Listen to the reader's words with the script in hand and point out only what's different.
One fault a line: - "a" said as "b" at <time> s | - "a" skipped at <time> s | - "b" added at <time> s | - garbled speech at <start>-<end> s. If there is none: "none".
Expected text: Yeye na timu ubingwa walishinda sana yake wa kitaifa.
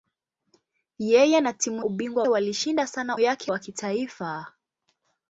none